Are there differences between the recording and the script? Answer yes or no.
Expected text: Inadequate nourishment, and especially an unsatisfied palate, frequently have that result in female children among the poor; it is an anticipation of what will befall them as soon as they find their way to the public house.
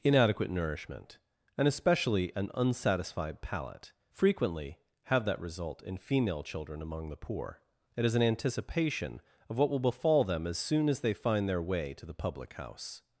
no